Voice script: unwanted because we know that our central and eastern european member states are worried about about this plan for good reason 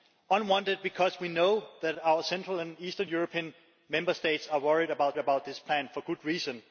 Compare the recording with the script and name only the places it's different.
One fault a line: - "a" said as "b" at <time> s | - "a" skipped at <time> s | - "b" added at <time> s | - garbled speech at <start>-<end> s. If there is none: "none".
none